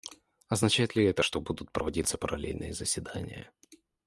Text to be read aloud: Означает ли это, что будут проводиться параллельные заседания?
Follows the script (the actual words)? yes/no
yes